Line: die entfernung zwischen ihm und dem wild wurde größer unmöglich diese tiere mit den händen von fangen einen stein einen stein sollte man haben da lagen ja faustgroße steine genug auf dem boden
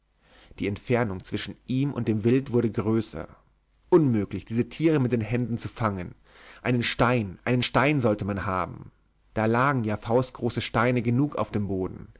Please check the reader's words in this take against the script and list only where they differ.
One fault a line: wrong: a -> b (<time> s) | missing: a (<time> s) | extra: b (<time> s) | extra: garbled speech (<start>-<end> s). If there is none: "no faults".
wrong: von -> zu (5.6 s)